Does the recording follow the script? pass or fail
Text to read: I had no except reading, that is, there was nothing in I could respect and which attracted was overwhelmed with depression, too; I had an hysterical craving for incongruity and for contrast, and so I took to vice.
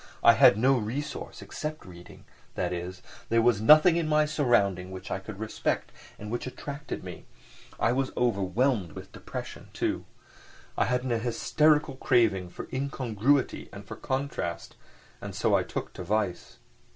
fail